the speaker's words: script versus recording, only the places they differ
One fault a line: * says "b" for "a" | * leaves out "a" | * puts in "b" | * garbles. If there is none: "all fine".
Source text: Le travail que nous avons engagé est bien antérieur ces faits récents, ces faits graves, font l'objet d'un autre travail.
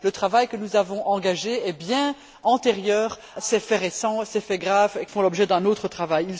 all fine